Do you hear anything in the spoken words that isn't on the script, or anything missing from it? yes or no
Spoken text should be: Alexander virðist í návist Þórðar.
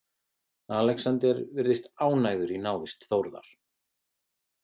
yes